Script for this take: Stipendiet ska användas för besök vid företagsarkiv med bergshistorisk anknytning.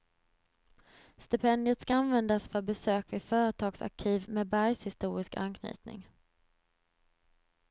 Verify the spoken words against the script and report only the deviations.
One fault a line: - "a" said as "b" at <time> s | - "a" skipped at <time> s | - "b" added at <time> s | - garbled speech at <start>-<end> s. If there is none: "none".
none